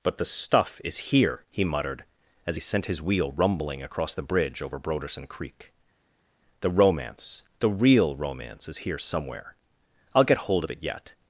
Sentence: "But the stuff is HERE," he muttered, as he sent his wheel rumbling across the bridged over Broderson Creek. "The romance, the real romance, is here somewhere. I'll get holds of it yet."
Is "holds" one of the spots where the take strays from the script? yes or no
yes